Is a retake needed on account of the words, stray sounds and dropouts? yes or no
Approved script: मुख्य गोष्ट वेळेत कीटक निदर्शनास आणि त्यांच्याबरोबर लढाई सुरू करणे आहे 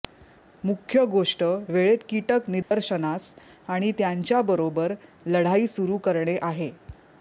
yes